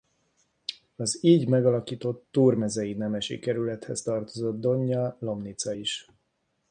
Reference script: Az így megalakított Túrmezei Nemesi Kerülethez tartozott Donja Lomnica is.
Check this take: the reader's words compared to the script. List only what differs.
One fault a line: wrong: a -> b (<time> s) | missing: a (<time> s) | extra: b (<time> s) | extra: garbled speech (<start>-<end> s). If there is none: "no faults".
no faults